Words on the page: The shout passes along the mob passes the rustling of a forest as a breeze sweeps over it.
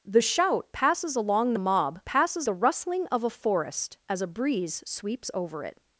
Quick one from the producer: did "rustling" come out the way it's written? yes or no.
yes